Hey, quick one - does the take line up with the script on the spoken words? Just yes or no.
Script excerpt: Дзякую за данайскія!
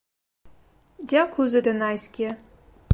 yes